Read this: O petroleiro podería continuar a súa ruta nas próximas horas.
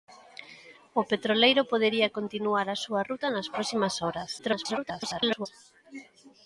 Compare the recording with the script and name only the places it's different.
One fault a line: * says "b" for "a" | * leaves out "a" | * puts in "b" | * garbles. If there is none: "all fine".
* garbles